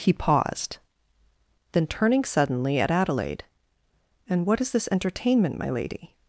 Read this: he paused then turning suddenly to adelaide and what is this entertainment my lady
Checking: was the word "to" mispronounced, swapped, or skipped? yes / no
yes